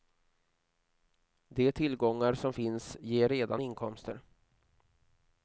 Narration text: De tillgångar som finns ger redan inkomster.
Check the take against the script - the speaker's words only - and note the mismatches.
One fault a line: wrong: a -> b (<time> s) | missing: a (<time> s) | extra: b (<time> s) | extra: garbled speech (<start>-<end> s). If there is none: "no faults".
no faults